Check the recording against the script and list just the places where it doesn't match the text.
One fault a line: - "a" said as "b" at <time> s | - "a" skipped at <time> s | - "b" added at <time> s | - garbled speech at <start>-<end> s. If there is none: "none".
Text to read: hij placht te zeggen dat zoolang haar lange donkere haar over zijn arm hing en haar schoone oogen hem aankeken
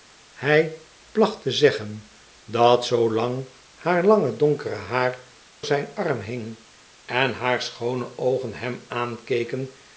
- "over" skipped at 5.2 s